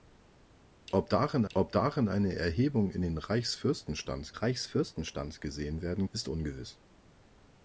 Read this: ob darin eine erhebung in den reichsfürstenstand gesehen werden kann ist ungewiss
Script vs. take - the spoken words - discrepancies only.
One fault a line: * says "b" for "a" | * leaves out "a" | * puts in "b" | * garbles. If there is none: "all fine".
* puts in "ob darin"
* puts in "reichsfürstenstand"
* leaves out "kann"